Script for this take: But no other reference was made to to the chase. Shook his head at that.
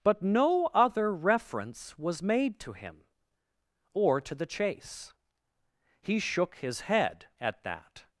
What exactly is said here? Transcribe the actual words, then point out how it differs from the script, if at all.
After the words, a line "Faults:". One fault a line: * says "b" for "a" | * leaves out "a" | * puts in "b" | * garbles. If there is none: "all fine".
But no other reference was made to him, or to the chase. He shook his head at that.
Faults:
* puts in "him or"
* puts in "He"